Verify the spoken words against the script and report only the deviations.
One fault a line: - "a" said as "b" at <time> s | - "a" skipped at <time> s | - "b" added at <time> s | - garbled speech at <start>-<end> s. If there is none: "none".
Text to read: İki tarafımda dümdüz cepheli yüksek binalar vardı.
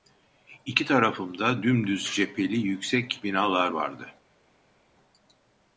none